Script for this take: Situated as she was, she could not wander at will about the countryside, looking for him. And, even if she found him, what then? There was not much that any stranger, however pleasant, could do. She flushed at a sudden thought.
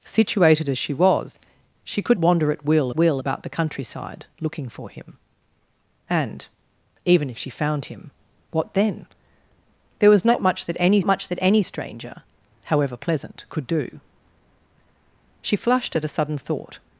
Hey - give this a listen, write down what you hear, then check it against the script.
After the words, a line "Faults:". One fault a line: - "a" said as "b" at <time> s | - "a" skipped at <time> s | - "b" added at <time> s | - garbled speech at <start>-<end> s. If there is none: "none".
Situated as she was, she could wander at will will about the countryside, looking for him. And, even if she found him, what then? There was not much that any much that any stranger, however pleasant, could do. She flushed at a sudden thought.
Faults:
- "not" skipped at 2.2 s
- "will" added at 2.9 s
- "much that any" added at 11.0 s